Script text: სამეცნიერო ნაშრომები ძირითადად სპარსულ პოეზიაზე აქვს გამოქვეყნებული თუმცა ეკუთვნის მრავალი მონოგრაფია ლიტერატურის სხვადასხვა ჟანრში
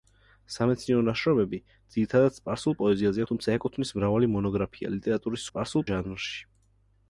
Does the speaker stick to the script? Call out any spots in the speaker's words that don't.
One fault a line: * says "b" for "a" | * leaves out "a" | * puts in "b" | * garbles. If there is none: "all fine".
* leaves out "აქვს გამოქვეყნებული"
* says "სპარსულ" for "სხვადასხვა"